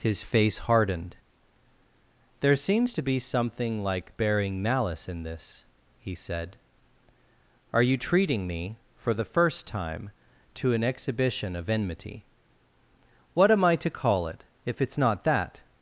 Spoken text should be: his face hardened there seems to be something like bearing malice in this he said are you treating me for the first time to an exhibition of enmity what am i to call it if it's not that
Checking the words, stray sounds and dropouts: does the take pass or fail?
pass